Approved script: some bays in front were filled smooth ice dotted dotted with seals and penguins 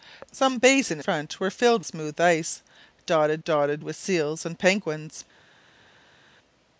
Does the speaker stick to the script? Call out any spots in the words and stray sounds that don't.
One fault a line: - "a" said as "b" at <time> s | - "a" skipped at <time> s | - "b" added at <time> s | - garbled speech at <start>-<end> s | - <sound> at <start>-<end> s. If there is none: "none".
none